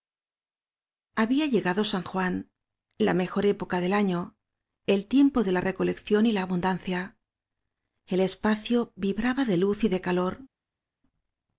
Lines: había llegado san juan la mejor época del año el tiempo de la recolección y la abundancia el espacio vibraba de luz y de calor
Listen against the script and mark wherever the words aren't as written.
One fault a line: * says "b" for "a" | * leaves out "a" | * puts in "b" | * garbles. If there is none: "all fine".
all fine